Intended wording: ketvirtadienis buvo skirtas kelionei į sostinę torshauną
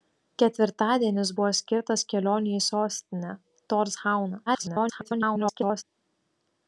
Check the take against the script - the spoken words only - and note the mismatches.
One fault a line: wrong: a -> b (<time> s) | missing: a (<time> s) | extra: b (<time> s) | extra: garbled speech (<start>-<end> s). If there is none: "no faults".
extra: garbled speech (4.5-5.8 s)